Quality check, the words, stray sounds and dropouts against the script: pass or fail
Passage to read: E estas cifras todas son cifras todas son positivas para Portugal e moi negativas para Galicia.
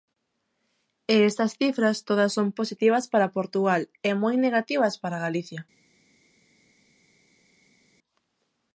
fail